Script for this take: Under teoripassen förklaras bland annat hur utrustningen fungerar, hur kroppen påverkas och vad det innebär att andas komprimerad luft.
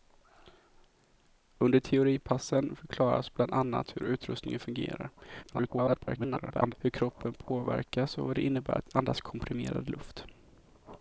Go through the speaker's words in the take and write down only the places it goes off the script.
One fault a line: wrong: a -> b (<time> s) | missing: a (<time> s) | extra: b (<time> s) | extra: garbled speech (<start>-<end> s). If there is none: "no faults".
extra: garbled speech (5.4-6.7 s)